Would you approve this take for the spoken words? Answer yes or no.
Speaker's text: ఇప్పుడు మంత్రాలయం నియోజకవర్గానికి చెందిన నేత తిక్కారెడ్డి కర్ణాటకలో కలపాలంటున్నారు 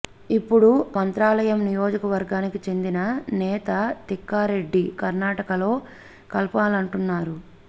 yes